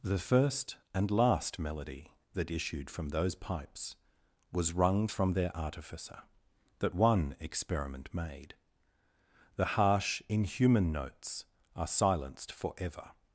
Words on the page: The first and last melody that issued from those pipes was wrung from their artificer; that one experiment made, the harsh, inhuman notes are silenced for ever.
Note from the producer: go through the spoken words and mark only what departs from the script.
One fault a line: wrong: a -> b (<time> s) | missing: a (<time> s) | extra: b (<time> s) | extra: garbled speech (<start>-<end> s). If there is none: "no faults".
no faults